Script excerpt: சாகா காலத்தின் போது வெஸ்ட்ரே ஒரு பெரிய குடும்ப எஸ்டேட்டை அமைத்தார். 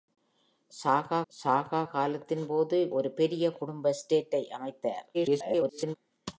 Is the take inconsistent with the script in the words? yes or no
yes